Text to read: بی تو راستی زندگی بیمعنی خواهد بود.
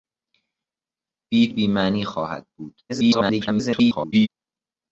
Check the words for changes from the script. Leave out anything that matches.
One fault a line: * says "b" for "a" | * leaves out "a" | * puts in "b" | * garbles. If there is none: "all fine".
* leaves out "تو راستی زندگی"
* garbles